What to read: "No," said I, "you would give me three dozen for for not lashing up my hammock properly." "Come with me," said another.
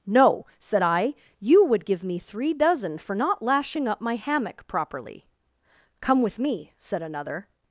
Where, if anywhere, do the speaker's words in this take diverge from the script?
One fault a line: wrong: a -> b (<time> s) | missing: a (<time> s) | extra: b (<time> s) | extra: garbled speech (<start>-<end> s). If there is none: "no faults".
missing: for (3.1 s)